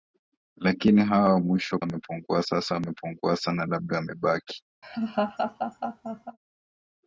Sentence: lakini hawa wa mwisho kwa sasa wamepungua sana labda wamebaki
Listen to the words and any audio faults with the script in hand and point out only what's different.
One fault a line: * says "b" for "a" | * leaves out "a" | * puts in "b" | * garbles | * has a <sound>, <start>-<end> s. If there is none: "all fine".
* says "wamepungua" for "kwa"
* has a laugh, 4.8-6.4 s